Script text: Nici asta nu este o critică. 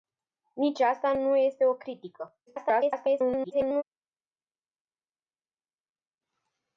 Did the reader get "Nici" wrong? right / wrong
right